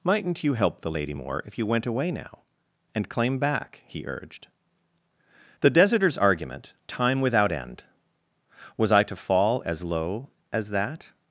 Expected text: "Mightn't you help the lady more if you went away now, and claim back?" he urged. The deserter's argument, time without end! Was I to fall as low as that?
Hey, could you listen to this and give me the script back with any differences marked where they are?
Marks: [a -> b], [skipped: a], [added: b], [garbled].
"Mightn't you help the lady more if you went away now, and claim back?" he urged. The deserter's argument, time without end! Was I to fall as low as that?